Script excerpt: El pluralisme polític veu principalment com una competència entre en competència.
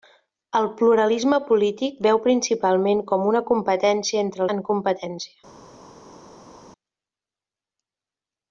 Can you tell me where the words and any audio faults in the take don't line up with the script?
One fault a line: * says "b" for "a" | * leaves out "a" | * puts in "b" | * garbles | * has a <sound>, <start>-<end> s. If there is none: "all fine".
all fine